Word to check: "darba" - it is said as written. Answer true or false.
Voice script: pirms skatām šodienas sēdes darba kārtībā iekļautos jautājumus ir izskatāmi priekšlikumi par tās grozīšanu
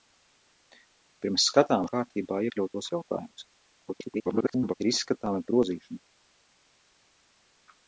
false